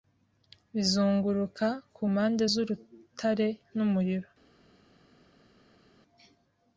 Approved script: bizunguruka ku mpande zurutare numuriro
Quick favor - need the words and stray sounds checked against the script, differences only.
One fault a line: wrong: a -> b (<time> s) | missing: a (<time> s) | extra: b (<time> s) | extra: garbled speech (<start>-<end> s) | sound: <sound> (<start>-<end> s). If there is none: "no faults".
no faults